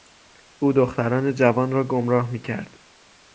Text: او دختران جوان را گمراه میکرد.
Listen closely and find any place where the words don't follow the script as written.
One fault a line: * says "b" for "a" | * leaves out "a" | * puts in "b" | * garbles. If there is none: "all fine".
all fine